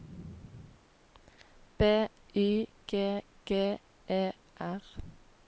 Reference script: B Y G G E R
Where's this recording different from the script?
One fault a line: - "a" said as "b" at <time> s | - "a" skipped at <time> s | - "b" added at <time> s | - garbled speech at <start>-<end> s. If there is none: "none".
none